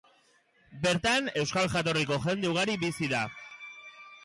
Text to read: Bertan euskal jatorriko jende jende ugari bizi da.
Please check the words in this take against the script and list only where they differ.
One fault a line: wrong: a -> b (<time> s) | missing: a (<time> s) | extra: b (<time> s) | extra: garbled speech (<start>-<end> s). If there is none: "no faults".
missing: jende (2.5 s)